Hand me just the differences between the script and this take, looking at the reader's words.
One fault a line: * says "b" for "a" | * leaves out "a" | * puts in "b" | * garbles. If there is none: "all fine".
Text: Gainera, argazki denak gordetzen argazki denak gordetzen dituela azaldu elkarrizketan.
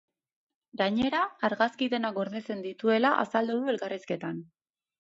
* leaves out "argazki denak gordetzen"
* puts in "du"